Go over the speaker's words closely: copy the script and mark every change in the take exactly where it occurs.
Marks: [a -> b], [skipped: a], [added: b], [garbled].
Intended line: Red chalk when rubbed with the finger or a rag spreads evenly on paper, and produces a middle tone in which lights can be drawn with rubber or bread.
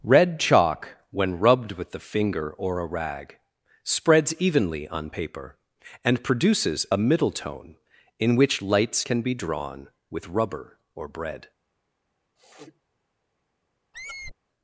Red chalk when rubbed with the finger or a rag spreads evenly on paper, and produces a middle tone in which lights can be drawn with rubber or bread.